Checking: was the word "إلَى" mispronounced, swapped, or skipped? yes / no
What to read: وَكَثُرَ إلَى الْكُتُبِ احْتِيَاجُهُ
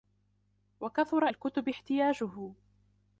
yes